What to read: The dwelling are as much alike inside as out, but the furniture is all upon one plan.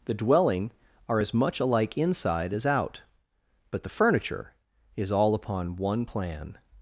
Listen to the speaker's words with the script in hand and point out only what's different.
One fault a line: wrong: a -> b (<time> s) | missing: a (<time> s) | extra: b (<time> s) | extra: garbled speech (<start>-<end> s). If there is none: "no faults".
no faults